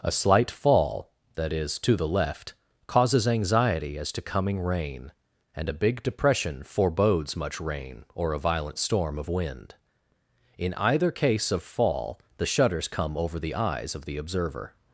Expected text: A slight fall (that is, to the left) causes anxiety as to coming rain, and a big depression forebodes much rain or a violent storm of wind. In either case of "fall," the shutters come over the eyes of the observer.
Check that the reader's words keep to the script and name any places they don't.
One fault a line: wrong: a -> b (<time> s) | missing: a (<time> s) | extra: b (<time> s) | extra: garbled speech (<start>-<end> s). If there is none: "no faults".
no faults